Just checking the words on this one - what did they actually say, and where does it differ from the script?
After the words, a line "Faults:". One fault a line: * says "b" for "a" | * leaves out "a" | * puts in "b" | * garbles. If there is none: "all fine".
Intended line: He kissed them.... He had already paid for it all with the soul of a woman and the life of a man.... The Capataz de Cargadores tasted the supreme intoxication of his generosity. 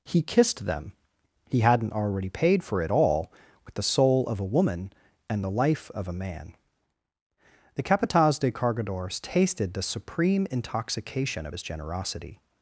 He kissed them.... He hadn't already paid for it all with the soul of a woman and the life of a man.... The Capataz de Cargadores tasted the supreme intoxication of his generosity.
Faults:
* says "hadn't" for "had"